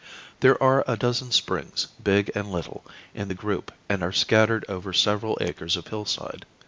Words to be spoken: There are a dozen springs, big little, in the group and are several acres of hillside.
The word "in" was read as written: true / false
true